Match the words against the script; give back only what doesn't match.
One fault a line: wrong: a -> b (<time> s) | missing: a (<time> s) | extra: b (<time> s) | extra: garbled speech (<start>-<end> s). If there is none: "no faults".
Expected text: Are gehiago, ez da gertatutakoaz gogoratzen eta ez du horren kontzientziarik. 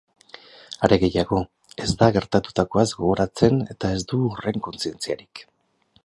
no faults